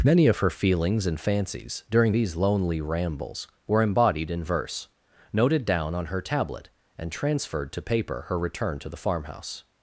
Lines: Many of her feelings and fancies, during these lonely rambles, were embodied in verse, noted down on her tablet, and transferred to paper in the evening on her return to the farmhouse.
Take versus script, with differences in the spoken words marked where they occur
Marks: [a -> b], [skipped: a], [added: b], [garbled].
Many of her feelings and fancies, during these lonely rambles, were embodied in verse, noted down on her tablet, and transferred to paper [skipped: in the evening on] her return to the farmhouse.